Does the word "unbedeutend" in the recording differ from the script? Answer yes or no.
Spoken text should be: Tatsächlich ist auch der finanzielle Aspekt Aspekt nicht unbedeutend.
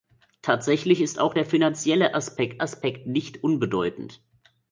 no